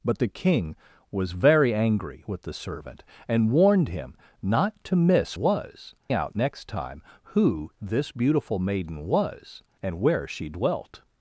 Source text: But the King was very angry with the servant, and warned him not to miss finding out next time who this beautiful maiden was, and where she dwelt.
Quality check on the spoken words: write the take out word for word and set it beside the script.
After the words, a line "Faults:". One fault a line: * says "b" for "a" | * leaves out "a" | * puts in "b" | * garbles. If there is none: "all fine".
But the King was very angry with the servant, and warned him not to miss was out next time who this beautiful maiden was, and where she dwelt.
Faults:
* says "was" for "finding"